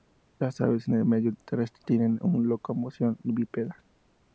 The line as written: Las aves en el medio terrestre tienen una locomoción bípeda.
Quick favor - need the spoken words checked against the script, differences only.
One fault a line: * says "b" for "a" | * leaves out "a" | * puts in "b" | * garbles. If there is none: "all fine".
all fine